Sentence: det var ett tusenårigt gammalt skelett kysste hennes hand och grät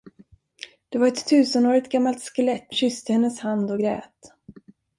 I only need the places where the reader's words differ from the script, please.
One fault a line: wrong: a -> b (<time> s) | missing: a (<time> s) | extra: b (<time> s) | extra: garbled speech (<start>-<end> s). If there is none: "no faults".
no faults